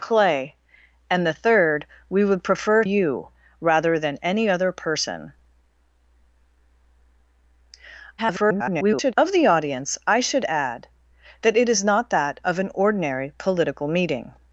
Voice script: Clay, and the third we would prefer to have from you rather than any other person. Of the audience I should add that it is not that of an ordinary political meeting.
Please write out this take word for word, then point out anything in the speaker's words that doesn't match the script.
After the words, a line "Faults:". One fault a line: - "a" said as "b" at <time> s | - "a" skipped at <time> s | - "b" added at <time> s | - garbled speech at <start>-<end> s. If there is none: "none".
Clay, and the third we would prefer you rather than any other person. [garbled] Of the audience I should add that it is not that of an ordinary political meeting.
Faults:
- "to have from" skipped at 2.8 s
- garbled speech at 8.2-9.1 s